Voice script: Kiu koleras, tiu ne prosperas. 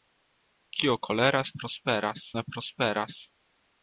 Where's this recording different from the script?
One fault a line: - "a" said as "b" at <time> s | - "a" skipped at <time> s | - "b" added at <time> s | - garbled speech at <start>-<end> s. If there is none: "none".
- "tiu" said as "prosperas" at 1.6 s